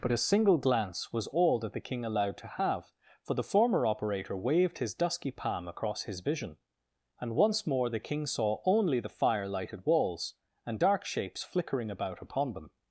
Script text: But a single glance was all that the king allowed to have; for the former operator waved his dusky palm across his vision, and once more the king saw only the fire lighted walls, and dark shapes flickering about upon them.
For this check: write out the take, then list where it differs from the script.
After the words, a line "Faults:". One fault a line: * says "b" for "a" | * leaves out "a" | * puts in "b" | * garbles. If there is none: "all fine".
But a single glance was all that the king allowed to have; for the former operator waved his dusky palm across his vision, and once more the king saw only the fire lighted walls, and dark shapes flickering about upon them.
Faults:
all fine